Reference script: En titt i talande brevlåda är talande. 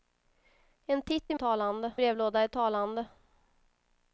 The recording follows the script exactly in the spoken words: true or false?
true